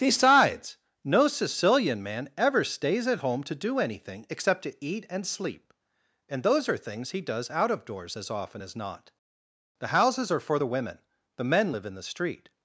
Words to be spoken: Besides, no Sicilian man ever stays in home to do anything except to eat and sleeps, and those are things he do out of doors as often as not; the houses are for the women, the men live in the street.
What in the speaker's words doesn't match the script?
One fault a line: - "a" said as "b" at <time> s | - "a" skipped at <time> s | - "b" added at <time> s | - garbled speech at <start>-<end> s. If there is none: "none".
- "in" said as "at" at 3.0 s
- "sleeps" said as "sleep" at 5.3 s
- "do" said as "does" at 7.2 s